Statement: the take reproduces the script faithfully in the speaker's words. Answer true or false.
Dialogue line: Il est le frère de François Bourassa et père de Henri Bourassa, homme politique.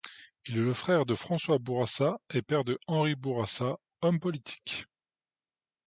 true